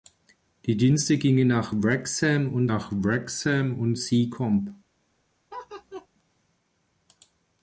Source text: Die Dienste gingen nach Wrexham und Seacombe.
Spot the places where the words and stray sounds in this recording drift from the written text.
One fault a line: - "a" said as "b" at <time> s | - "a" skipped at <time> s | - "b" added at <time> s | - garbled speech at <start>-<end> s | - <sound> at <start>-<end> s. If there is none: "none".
- "nach Wrexham und" added at 2.6 s
- laugh at 5.5-6.1 s